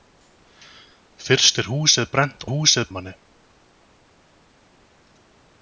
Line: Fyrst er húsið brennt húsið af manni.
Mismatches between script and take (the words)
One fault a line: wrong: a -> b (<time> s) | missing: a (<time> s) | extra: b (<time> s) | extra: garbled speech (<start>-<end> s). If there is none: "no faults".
no faults